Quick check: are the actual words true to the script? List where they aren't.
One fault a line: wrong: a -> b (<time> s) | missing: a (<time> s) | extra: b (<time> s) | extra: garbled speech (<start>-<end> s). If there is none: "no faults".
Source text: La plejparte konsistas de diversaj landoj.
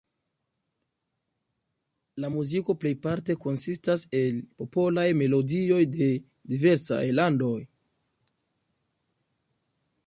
extra: muziko (2.4 s)
extra: el popolaj melodioj (4.2 s)